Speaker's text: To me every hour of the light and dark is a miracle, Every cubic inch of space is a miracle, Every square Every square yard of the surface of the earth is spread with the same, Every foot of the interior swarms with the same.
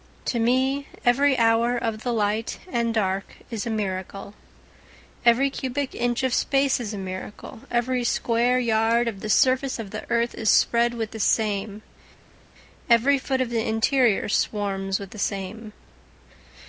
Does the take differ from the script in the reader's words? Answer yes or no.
yes